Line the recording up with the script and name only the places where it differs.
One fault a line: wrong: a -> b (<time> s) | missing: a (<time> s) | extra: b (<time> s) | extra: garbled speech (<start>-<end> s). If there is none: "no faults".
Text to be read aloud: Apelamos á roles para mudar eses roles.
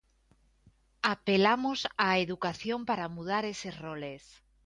wrong: roles -> educación (2.3 s)